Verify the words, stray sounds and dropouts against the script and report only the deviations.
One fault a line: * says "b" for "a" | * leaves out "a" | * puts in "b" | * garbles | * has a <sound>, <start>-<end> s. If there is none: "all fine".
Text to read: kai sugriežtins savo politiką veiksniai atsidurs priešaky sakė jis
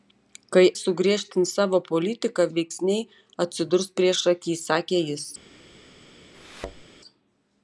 * has a thud, 6.3-6.8 s